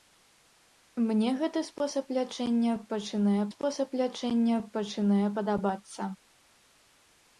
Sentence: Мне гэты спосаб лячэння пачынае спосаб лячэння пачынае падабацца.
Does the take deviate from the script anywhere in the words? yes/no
no